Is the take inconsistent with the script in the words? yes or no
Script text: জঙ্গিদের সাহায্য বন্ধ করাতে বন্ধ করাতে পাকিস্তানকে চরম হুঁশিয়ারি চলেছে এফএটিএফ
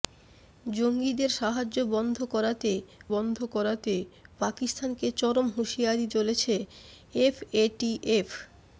no